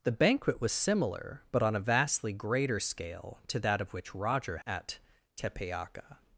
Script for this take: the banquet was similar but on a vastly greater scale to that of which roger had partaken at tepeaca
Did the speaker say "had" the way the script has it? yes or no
no